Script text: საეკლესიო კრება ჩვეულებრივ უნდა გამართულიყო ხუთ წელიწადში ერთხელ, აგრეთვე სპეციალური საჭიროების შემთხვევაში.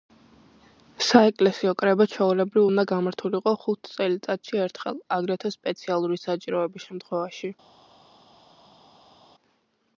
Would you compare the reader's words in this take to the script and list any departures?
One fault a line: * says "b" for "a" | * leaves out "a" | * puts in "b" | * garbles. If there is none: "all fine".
all fine